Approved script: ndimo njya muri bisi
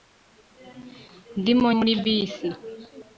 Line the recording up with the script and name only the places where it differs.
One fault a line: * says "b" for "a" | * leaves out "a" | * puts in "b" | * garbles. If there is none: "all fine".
* leaves out "njya"